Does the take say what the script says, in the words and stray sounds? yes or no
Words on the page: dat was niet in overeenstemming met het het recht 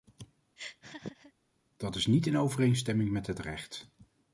no